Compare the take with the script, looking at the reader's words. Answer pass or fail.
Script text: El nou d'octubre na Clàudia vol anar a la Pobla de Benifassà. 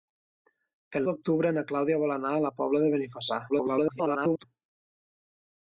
fail